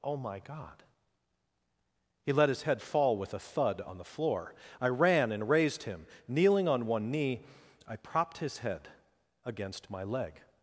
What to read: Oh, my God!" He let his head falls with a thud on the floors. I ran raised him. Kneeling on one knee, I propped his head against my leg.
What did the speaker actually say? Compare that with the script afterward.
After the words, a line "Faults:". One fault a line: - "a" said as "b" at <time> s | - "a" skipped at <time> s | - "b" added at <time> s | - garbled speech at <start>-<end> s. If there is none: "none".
Oh, my God!" He let his head fall with a thud on the floor. I ran and raised him. Kneeling on one knee, I propped his head against my leg.
Faults:
- "falls" said as "fall" at 2.8 s
- "floors" said as "floor" at 4.0 s
- "and" added at 5.3 s